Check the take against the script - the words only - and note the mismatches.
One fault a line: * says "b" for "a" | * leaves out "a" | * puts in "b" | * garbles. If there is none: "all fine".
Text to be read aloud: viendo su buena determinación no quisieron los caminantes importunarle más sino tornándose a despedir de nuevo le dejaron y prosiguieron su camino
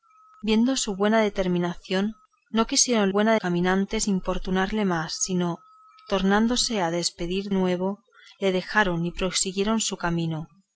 * says "buena" for "los"
* leaves out "de"